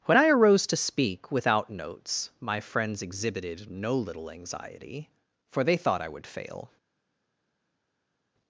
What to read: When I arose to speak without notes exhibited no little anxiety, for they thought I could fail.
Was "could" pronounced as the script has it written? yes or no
no